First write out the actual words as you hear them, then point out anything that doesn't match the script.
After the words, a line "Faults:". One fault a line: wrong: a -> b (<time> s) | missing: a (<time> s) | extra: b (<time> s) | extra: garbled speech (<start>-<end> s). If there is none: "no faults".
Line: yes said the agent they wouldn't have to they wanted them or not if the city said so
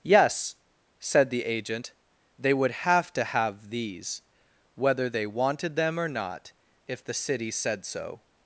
yes said the agent they would have to have these whether they wanted them or not if the city said so
Faults:
wrong: wouldn't -> would (2.5 s)
extra: have these whether (3.2 s)